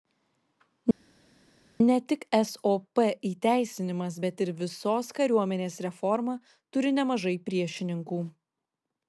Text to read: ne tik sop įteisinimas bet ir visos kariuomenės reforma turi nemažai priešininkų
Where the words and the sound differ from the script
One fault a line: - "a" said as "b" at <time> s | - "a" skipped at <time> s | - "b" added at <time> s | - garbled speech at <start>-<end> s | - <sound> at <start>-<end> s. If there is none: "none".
none